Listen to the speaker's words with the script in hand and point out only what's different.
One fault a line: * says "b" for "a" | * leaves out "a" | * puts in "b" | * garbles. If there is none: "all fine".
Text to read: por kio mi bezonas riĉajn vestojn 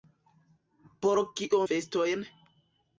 * leaves out "mi bezonas riĉajn"